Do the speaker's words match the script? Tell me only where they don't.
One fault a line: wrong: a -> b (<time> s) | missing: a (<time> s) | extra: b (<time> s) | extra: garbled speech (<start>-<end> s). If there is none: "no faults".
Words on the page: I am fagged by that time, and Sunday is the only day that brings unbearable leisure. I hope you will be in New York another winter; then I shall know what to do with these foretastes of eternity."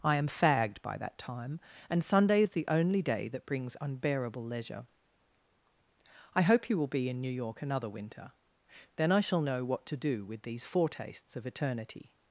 no faults